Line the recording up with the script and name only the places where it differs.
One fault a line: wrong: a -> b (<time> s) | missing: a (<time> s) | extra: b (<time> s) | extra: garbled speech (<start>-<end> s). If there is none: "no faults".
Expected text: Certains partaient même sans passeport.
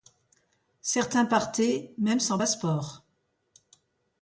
no faults